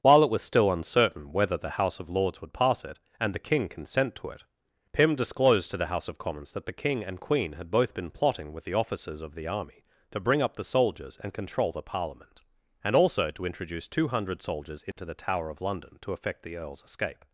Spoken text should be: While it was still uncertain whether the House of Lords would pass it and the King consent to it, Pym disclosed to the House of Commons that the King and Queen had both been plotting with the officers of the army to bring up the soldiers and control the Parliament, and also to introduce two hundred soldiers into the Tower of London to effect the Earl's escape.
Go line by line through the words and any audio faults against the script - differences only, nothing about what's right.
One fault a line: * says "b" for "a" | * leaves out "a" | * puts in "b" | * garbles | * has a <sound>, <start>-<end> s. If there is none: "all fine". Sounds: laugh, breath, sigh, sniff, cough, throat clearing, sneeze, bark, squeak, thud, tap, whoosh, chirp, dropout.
* has a dropout, 14.9-15.0 s